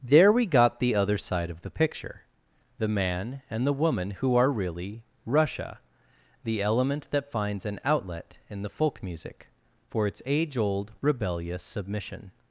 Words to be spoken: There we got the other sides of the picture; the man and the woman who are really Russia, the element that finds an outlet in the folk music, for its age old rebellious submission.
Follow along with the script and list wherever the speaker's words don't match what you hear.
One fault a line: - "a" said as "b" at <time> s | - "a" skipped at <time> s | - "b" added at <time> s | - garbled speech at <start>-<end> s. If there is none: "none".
- "sides" said as "side" at 1.2 s